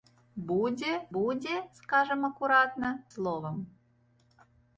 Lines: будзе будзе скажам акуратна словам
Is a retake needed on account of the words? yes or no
no